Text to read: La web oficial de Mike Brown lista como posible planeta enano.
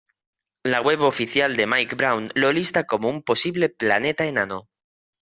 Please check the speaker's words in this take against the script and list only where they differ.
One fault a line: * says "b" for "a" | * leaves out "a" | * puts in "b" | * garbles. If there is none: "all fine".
* puts in "lo"
* puts in "un"